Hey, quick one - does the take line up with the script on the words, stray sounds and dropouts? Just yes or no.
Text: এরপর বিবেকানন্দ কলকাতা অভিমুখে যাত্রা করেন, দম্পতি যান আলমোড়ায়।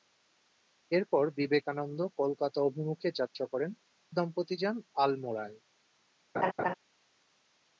no